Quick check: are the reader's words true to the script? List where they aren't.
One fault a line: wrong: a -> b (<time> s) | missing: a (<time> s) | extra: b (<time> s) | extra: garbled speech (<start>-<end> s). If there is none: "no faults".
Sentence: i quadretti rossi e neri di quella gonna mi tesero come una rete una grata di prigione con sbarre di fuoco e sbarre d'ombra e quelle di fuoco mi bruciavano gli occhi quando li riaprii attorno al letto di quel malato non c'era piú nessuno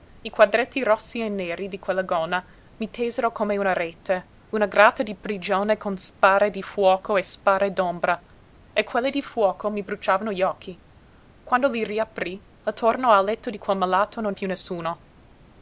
missing: c'era (14.3 s)